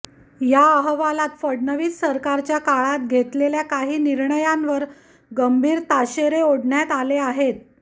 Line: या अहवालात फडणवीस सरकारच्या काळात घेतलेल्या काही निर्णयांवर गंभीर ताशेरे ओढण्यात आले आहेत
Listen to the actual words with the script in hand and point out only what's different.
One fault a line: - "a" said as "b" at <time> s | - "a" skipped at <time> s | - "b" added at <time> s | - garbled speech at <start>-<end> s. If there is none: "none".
none